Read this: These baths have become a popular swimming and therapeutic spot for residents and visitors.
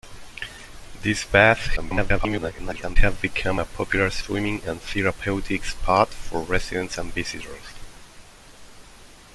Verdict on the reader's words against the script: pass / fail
fail